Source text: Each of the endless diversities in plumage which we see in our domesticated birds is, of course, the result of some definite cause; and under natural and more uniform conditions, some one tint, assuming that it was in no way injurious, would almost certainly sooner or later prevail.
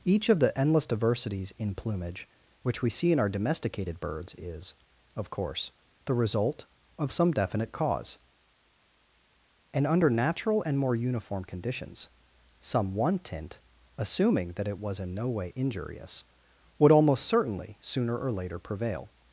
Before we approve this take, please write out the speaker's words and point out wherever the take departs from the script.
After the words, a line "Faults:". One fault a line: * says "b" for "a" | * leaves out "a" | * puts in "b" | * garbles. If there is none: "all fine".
Each of the endless diversities in plumage which we see in our domesticated birds is, of course, the result of some definite cause; and under natural and more uniform conditions, some one tint, assuming that it was in no way injurious, would almost certainly sooner or later prevail.
Faults:
all fine